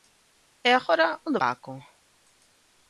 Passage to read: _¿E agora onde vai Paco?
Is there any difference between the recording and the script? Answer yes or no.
yes